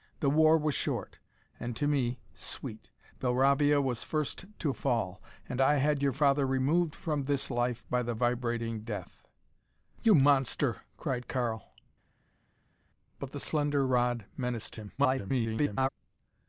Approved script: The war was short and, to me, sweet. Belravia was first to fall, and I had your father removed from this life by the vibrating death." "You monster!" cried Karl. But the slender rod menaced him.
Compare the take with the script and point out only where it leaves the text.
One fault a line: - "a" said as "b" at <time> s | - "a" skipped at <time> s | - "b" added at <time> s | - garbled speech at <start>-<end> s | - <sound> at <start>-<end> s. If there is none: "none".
- garbled speech at 15.0-15.9 s